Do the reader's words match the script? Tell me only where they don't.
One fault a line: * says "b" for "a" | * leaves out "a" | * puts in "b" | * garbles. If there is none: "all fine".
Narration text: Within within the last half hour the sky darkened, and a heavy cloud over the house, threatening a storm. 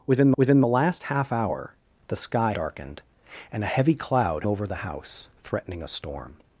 all fine